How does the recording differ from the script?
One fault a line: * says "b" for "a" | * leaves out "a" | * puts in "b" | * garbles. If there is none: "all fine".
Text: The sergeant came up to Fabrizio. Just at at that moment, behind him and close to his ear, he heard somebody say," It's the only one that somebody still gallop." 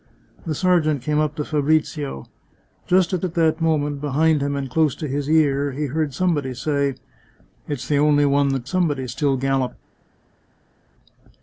all fine